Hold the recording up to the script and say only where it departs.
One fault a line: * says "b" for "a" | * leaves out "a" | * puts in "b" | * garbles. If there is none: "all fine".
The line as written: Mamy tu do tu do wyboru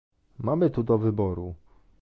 * leaves out "tu do"